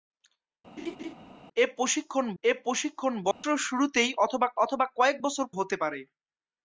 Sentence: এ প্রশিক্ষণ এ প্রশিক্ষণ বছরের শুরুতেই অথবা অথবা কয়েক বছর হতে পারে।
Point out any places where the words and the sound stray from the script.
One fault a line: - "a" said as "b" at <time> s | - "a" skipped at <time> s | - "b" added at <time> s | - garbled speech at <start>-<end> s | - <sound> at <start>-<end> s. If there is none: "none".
- laugh at 0.8-1.1 s
- dropout at 3.3-3.4 s